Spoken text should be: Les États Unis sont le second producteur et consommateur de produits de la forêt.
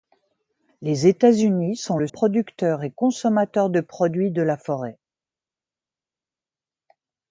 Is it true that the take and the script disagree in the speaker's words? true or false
true